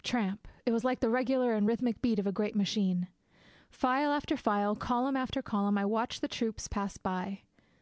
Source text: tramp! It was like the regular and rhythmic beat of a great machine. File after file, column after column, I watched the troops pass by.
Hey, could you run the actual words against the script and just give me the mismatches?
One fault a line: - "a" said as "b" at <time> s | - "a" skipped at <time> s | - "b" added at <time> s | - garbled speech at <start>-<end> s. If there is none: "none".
none